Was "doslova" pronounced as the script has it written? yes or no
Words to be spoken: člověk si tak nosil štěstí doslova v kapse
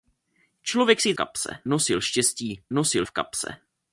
no